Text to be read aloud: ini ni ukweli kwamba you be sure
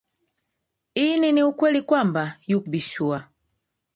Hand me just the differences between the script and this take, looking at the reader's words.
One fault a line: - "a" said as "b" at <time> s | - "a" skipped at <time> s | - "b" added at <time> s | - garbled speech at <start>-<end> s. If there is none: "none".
none